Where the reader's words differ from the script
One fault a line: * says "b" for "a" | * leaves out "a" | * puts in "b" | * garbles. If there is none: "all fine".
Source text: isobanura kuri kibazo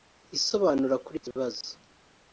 all fine